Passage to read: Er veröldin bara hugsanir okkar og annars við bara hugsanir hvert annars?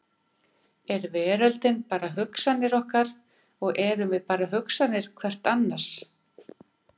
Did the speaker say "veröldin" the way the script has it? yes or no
yes